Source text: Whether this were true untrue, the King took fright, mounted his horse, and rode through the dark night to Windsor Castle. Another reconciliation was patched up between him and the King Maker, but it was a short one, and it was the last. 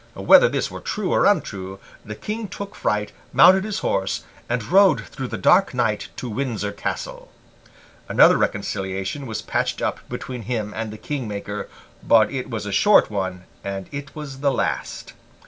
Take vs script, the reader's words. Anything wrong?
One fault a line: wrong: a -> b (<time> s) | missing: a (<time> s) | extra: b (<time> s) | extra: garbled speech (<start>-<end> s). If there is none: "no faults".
extra: or (1.1 s)